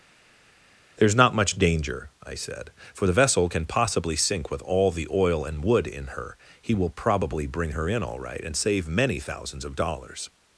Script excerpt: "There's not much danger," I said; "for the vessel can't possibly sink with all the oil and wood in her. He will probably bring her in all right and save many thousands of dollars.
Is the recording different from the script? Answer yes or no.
yes